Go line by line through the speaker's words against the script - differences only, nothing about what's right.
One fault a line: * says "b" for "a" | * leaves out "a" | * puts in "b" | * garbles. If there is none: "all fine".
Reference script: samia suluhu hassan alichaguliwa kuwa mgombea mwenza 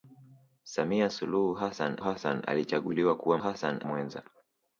* puts in "hassan"
* says "hassan" for "mgombea"